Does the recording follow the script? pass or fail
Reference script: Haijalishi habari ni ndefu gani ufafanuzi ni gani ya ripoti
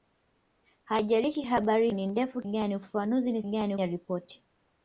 pass